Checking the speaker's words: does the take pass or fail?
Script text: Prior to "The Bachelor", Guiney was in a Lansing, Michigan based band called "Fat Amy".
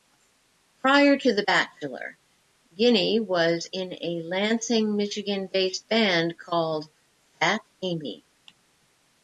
pass